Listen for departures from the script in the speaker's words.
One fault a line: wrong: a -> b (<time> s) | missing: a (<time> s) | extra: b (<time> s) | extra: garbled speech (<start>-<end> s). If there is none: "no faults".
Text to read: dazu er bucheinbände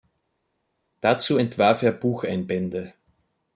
extra: entwarf (1.4 s)